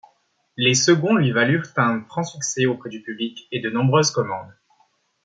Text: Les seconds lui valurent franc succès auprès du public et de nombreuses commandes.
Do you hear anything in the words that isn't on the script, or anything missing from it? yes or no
yes